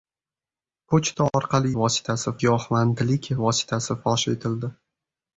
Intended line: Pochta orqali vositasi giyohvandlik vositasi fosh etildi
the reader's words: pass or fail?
pass